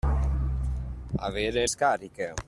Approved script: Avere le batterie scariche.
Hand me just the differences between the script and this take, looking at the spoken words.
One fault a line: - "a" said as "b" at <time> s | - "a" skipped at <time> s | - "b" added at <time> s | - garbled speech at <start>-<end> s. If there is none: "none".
- "le batterie" skipped at 1.7 s